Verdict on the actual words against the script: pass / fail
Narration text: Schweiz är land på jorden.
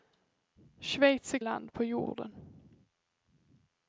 pass